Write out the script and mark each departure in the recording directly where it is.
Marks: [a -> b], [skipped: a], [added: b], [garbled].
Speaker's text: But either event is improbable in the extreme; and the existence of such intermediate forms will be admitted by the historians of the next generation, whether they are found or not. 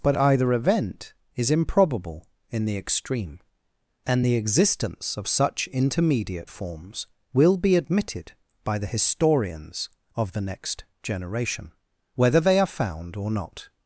But either event is improbable in the extreme; and the existence of such intermediate forms will be admitted by the historians of the next generation, whether they are found or not.